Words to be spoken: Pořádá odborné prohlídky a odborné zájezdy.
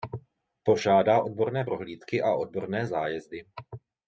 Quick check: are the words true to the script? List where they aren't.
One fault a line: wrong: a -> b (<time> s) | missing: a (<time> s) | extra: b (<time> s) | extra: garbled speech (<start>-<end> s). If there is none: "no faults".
no faults